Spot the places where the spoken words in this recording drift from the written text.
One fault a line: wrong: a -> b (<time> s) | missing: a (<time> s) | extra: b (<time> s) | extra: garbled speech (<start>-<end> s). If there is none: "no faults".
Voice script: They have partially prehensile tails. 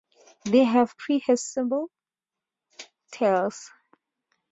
missing: partially (1.0 s)